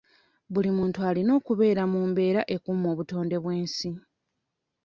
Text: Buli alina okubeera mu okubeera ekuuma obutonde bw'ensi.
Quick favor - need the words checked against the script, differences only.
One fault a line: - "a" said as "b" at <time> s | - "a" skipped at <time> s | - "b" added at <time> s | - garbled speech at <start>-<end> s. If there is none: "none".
- "muntu" added at 0.8 s
- "okubeera" said as "mbeera" at 2.1 s